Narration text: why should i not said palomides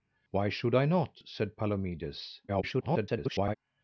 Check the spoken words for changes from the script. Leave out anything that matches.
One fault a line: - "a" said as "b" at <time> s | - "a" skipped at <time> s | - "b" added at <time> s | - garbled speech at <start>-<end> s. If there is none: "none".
- garbled speech at 2.5-3.6 s